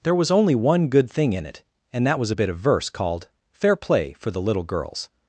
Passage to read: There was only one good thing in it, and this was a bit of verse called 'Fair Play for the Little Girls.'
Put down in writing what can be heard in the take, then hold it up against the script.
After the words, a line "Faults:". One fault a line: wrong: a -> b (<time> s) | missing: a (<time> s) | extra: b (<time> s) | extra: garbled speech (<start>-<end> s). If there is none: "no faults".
There was only one good thing in it, and that was a bit of verse called 'Fair Play for the Little Girls.'
Faults:
wrong: this -> that (2.1 s)